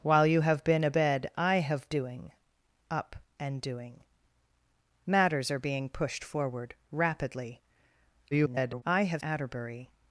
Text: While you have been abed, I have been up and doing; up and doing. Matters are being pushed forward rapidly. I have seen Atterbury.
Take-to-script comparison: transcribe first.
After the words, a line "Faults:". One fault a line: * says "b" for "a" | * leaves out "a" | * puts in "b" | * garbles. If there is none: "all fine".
While you have been abed, I have doing; up and doing. Matters are being pushed forward rapidly. [garbled] I have Atterbury.
Faults:
* leaves out "been up and"
* garbles
* leaves out "seen"